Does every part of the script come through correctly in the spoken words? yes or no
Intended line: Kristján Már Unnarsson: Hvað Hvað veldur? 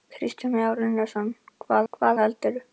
yes